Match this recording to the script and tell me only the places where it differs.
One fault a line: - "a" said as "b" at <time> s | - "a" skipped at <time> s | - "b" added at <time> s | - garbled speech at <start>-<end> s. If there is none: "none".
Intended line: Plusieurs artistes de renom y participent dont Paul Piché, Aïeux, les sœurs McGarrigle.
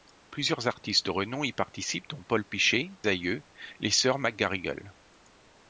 none